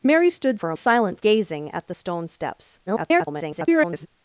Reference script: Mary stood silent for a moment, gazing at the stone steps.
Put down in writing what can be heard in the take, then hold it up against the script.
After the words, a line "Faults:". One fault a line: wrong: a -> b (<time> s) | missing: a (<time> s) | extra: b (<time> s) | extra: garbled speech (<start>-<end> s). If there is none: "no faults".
Mary stood for a silent, gazing at the stone steps. [garbled]
Faults:
missing: silent (0.6 s)
wrong: moment -> silent (0.8 s)
extra: garbled speech (2.9-4.1 s)